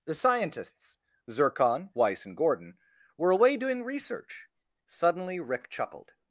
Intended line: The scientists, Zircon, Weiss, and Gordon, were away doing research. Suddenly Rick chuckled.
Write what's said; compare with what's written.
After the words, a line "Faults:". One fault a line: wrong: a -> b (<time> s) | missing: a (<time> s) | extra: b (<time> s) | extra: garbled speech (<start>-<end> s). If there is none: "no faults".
The scientists, Zircon, Weiss, and Gordon, were away doing research. Suddenly Rick chuckled.
Faults:
no faults